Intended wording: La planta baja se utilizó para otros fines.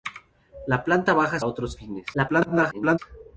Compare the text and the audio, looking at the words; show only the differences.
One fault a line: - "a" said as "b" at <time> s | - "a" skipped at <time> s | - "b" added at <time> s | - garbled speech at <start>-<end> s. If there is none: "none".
- "se utilizó para" skipped at 1.4 s
- garbled speech at 2.1-3.0 s